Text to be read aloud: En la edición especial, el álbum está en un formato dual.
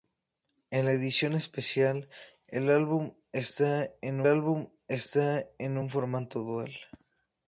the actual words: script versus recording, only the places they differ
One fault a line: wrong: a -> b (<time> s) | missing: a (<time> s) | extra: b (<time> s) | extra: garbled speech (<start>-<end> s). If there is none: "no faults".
extra: álbum está en (4.3 s)